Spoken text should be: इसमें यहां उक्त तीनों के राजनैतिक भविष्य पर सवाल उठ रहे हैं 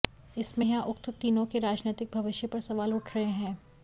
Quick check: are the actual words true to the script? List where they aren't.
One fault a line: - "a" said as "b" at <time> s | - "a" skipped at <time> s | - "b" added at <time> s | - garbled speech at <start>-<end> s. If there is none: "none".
none